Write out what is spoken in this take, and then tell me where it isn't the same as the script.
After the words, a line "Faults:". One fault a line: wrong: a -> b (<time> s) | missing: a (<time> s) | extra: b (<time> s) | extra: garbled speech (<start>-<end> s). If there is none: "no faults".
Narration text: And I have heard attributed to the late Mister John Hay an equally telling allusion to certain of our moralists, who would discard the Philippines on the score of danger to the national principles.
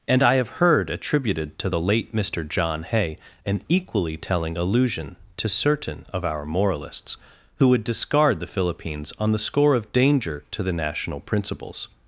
And I have heard attributed to the late Mister John Hay an equally telling allusion to certain of our moralists, who would discard the Philippines on the score of danger to the national principles.
Faults:
no faults